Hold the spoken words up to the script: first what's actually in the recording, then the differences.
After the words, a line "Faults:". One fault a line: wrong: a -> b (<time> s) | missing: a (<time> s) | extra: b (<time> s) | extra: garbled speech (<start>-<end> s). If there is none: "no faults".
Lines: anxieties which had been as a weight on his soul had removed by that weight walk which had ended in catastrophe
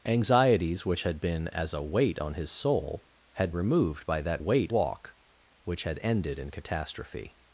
anxieties which had been as a weight on his soul had removed by that weight walk which had ended in catastrophe
Faults:
no faults